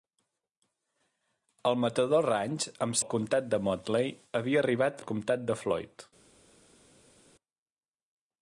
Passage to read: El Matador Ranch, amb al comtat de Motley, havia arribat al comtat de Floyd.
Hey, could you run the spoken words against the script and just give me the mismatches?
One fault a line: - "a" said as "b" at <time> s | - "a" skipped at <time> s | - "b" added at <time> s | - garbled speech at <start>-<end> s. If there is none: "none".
none